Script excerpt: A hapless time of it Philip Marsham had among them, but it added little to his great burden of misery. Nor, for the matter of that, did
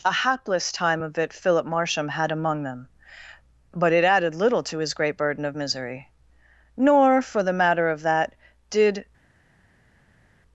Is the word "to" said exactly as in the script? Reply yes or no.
yes